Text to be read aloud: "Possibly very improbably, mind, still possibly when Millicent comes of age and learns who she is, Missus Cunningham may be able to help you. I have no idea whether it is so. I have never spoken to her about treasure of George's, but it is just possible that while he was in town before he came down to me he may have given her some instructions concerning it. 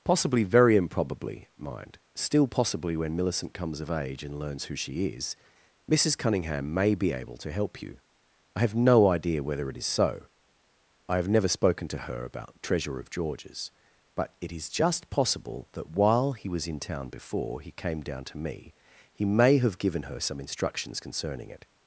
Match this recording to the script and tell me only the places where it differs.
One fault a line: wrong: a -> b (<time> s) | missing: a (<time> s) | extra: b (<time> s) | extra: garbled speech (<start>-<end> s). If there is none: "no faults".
no faults